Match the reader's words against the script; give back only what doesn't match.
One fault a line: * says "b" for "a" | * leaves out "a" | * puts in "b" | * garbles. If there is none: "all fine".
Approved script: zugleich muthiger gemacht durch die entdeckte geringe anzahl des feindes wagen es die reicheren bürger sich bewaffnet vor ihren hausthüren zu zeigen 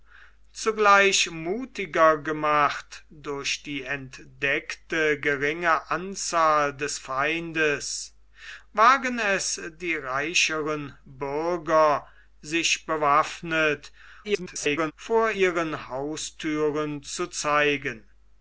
* garbles